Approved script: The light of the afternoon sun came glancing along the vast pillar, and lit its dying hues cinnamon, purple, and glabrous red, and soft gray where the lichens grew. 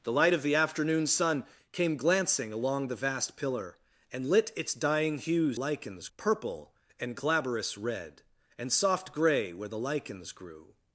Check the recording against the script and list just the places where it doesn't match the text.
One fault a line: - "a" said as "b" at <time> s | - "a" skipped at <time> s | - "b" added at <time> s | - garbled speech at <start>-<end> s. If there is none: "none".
- "cinnamon" said as "lichens" at 5.5 s